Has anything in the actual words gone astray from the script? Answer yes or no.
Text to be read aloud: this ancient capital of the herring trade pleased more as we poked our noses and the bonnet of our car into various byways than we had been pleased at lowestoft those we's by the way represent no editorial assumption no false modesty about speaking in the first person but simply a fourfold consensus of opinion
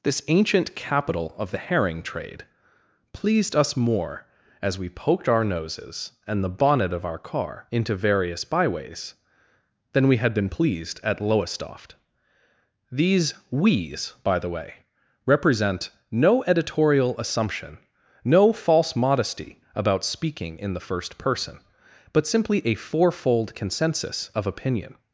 yes